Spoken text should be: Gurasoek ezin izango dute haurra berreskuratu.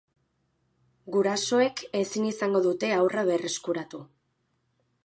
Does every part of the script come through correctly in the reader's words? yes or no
yes